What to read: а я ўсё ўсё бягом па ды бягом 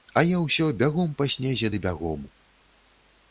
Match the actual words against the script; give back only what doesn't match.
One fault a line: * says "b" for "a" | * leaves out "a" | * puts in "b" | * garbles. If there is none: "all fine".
* leaves out "ўсё"
* puts in "снезе"